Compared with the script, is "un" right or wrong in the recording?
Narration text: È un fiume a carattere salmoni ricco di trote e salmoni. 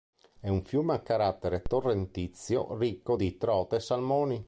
right